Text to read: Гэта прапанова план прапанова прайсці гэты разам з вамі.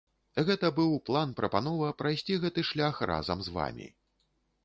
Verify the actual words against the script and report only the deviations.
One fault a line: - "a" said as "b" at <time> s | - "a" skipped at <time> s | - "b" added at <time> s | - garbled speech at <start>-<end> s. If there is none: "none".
- "прапанова" said as "быў" at 0.8 s
- "шлях" added at 2.7 s